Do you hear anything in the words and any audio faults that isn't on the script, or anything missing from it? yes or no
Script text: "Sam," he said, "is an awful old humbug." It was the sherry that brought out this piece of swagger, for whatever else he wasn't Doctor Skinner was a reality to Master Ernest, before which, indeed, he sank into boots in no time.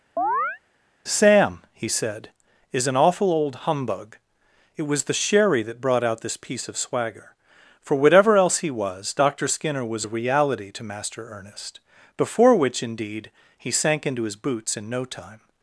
yes